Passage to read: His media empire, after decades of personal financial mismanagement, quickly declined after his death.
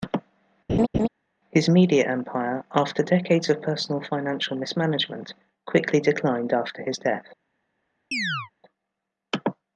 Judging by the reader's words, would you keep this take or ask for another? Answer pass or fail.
pass